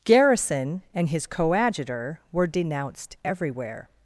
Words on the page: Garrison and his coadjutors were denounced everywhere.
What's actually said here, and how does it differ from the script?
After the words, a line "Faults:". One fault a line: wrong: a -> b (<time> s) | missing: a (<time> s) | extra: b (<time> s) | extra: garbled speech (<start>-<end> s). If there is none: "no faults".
Garrison and his coadjutor were denounced everywhere.
Faults:
wrong: coadjutors -> coadjutor (1.3 s)